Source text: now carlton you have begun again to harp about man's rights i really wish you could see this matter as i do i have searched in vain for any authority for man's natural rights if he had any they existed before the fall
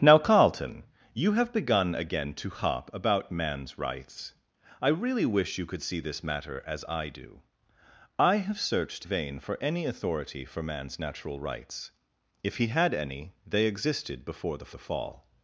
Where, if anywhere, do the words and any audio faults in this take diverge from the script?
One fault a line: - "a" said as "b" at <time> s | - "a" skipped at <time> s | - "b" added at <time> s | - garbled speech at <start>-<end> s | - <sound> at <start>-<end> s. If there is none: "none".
- "in" skipped at 9.1 s
- "the" added at 14.7 s